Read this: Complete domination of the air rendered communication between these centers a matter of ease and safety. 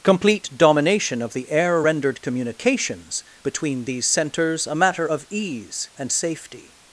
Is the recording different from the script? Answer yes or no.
yes